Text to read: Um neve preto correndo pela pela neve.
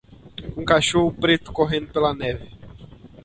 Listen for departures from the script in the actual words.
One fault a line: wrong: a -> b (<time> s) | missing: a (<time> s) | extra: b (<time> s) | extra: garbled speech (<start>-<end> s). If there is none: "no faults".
wrong: neve -> cachorro (0.6 s)
missing: pela (2.1 s)